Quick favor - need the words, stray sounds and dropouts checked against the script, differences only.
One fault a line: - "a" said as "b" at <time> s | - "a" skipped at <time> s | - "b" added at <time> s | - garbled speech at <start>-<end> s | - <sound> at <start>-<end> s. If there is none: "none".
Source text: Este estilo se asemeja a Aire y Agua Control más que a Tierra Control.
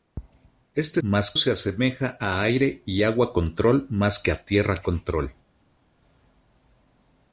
- "estilo" said as "más" at 1.0 s